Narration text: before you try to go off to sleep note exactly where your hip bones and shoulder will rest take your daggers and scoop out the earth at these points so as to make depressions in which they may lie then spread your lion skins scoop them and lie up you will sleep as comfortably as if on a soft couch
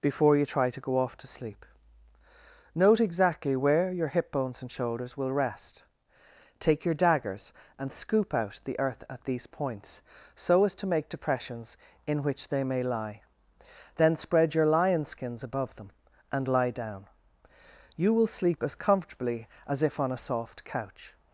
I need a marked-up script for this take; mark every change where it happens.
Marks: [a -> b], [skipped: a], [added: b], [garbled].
before you try to go off to sleep note exactly where your hip bones and [shoulder -> shoulders] will rest take your daggers and scoop out the earth at these points so as to make depressions in which they may lie then spread your lion skins [scoop -> above] them and lie [up -> down] you will sleep as comfortably as if on a soft couch